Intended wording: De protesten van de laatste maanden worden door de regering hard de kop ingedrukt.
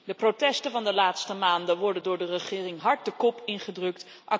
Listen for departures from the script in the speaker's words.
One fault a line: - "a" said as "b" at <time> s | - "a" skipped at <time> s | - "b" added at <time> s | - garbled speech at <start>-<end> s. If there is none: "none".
none